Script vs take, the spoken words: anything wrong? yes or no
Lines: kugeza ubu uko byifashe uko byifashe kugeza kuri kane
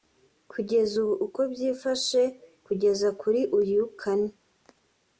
yes